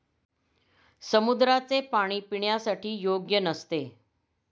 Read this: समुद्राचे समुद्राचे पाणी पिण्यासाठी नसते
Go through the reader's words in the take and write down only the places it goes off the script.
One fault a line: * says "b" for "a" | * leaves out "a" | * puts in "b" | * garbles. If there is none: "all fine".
* leaves out "समुद्राचे"
* puts in "योग्य"